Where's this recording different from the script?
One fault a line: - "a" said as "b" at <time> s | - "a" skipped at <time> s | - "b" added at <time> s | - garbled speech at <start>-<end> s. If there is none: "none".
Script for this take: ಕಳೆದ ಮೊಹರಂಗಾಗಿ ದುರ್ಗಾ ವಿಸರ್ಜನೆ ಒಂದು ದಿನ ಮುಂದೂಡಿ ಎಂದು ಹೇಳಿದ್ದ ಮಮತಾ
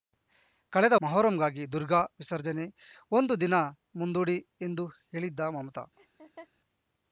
none